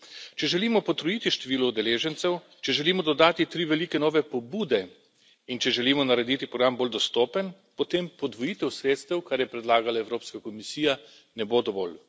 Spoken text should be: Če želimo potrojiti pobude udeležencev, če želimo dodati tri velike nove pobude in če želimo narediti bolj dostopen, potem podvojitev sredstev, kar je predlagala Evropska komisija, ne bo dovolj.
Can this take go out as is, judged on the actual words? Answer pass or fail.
fail